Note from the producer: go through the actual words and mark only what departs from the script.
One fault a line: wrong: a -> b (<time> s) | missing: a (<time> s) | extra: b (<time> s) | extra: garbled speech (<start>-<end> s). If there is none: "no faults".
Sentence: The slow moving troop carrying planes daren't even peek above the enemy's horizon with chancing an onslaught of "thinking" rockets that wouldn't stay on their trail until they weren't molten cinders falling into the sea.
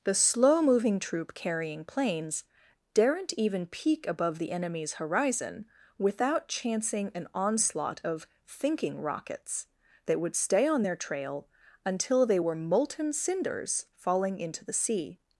wrong: with -> without (6.0 s)
wrong: wouldn't -> would (10.2 s)
wrong: weren't -> were (12.4 s)